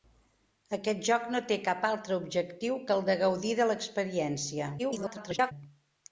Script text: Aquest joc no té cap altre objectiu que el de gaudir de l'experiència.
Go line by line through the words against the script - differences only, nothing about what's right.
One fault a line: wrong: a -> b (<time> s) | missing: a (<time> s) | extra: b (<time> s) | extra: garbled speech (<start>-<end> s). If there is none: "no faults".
extra: garbled speech (4.8-5.5 s)